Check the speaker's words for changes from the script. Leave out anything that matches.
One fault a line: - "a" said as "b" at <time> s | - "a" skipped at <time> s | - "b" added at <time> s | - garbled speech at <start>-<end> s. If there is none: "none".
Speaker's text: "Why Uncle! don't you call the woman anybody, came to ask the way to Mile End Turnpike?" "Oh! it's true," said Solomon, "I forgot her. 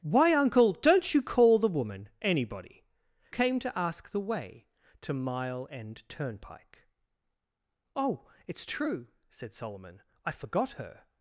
none